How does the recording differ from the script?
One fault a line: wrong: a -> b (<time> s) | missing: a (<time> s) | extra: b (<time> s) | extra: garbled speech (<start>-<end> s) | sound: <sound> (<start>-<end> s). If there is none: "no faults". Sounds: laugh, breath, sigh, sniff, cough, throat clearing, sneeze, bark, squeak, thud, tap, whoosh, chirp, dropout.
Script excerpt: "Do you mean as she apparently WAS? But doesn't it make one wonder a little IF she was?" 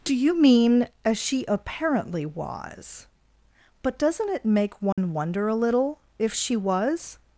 sound: dropout (4.9-5.0 s)